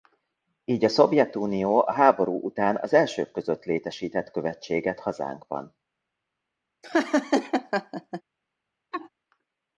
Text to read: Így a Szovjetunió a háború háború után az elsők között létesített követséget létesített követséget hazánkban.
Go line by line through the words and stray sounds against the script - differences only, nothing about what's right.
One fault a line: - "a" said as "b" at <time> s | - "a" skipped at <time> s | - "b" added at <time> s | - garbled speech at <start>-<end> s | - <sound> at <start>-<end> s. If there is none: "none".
- "háború" skipped at 2.4 s
- "létesített követséget" skipped at 5.0 s
- laugh at 6.8-8.2 s
- laugh at 8.9-9.1 s